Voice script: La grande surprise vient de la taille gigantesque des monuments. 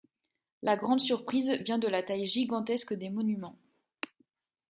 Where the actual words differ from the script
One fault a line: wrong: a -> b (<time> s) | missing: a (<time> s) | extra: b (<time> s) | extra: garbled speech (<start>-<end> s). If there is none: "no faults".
no faults